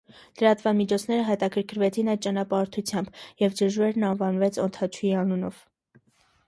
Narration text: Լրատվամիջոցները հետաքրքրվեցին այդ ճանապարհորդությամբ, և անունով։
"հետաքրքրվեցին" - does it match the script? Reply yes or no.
yes